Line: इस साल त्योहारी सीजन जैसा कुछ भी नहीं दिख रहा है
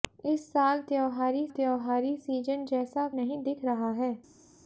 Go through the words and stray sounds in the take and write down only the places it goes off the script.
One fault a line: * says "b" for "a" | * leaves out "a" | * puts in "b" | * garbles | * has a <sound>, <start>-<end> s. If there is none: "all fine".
* puts in "त्योहारी"
* leaves out "कुछ भी"